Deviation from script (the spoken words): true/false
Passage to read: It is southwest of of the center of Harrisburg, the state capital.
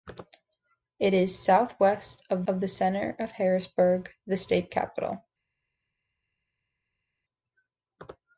false